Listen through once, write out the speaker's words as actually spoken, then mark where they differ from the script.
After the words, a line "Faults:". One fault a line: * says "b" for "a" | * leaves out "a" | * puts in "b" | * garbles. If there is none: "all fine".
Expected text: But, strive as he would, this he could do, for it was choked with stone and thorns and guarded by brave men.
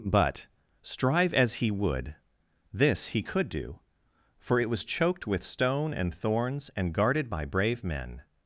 But, strive as he would, this he could do, for it was choked with stone and thorns and guarded by brave men.
Faults:
all fine